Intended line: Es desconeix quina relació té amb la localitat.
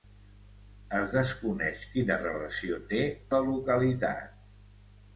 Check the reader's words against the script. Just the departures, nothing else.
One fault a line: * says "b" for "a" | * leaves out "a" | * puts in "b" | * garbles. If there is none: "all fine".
* leaves out "amb"